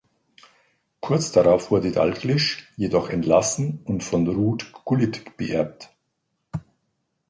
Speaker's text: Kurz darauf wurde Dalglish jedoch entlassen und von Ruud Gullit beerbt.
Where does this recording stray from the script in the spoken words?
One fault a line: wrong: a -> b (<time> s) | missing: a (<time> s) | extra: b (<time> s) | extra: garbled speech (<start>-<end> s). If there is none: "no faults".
no faults